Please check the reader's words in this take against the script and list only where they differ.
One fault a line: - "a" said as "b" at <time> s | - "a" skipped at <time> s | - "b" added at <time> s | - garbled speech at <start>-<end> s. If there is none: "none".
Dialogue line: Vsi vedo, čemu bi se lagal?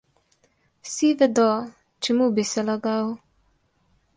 none